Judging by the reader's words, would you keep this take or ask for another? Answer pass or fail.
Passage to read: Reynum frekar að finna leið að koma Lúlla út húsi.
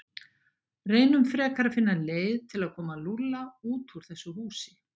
fail